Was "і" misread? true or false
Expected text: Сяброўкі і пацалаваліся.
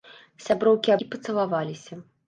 false